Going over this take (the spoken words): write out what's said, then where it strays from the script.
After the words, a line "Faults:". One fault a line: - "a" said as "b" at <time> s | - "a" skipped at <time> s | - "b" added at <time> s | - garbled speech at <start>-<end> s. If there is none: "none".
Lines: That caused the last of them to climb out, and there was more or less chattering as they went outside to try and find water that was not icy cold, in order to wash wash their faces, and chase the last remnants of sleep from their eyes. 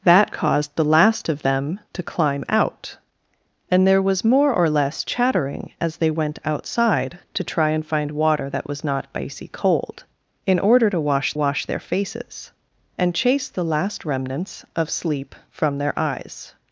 That caused the last of them to climb out, and there was more or less chattering as they went outside to try and find water that was not icy cold, in order to wash wash their faces, and chase the last remnants of sleep from their eyes.
Faults:
none